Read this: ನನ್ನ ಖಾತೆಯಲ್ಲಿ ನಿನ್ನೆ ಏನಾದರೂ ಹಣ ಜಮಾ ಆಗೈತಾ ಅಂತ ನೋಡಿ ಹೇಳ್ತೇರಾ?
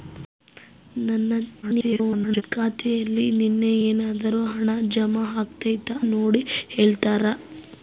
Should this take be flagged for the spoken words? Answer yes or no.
yes